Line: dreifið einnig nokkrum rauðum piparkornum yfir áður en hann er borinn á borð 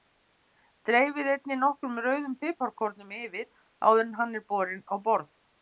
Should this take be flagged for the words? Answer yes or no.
no